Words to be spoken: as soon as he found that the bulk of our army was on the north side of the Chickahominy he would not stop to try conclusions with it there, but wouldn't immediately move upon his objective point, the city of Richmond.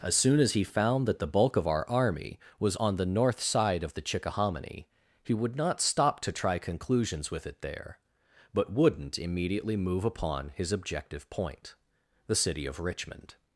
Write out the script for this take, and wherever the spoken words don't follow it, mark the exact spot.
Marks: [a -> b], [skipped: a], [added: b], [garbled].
as soon as he found that the bulk of our army was on the north side of the Chickahominy he would not stop to try conclusions with it there, but wouldn't immediately move upon his objective point, the city of Richmond.